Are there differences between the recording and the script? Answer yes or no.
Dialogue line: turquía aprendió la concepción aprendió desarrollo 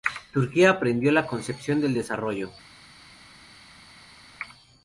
yes